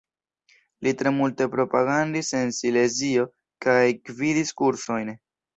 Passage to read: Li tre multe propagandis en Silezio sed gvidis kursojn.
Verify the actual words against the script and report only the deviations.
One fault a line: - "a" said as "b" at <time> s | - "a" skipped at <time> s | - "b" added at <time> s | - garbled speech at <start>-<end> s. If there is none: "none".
- "sed" said as "kaj" at 3.7 s